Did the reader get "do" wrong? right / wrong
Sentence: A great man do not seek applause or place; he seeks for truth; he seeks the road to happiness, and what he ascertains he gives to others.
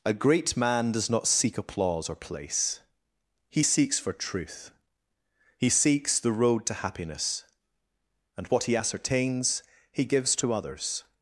wrong